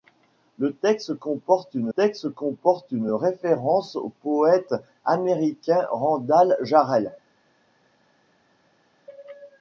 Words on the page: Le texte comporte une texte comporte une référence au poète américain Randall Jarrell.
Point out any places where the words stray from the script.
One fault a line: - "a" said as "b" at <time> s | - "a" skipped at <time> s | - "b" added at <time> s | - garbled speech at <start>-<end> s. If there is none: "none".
none